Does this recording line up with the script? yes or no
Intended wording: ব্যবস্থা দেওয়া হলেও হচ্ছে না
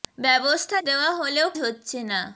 yes